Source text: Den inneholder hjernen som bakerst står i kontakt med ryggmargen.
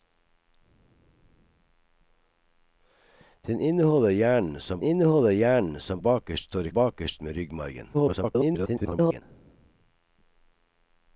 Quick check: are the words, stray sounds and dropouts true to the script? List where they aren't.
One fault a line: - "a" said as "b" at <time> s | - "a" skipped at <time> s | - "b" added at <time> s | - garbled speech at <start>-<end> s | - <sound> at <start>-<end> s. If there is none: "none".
- "inneholder hjernen som" added at 4.8 s
- "kontakt" said as "bakerst" at 6.7 s
- garbled speech at 7.9-9.2 s